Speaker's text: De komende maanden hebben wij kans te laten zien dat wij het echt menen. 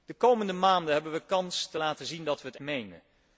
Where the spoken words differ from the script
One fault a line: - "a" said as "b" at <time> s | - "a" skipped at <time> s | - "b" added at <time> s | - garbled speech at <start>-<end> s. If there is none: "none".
- "echt" skipped at 2.6 s